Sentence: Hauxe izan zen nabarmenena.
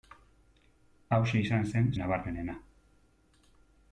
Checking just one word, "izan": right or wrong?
right